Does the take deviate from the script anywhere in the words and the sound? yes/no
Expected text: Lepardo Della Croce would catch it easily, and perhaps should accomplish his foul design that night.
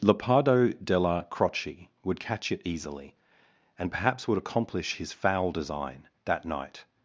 yes